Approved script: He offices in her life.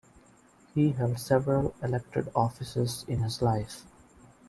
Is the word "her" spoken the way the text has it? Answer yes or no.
no